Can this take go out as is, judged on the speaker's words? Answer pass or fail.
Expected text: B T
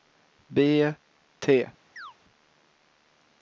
pass